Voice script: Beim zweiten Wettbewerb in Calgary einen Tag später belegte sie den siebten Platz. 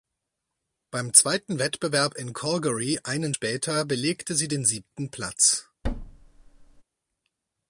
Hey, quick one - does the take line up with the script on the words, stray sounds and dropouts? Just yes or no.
no